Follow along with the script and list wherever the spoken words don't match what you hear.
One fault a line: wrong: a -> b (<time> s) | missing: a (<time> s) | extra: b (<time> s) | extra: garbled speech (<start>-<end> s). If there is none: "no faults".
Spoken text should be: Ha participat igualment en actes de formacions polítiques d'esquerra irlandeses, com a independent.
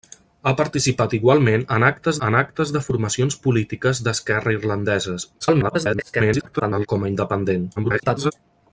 extra: en actes (2.3 s)
extra: garbled speech (5.4-6.9 s)
extra: garbled speech (7.8-8.3 s)